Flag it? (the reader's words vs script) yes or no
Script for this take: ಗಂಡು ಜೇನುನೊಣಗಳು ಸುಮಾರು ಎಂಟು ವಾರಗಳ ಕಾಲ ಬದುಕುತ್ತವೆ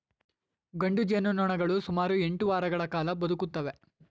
no